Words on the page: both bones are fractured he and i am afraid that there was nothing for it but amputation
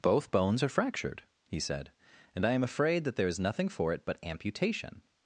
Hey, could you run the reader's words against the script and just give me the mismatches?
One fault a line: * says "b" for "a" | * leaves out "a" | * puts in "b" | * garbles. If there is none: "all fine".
* puts in "said"
* says "is" for "was"